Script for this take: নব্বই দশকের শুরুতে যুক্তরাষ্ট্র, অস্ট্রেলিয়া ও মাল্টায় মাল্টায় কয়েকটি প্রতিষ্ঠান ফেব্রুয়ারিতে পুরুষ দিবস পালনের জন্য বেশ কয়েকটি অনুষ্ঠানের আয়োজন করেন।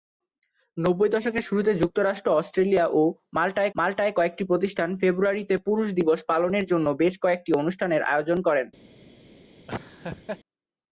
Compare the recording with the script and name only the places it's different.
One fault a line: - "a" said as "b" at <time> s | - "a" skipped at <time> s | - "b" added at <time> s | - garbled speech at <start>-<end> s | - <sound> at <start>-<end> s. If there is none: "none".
- laugh at 9.7-10.4 s